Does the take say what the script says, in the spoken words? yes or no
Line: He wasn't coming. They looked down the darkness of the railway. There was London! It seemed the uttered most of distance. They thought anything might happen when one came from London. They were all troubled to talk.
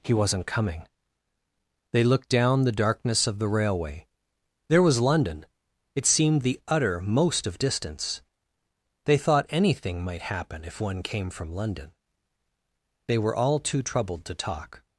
no